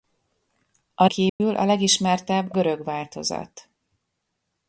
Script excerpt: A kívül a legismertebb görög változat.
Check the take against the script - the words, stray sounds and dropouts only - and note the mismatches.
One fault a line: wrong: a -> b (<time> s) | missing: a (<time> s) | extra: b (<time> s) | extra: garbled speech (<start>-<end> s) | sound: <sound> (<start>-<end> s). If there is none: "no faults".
sound: dropout (1.3-1.4 s)